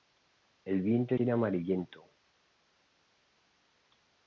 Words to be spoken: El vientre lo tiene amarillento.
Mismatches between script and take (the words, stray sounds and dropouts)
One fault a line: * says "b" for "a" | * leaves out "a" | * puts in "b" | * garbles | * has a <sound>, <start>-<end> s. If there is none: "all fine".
* leaves out "lo"